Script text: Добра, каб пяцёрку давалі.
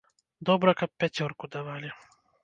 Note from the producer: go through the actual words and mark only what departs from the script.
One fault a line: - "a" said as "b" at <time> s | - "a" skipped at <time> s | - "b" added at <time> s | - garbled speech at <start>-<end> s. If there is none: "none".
none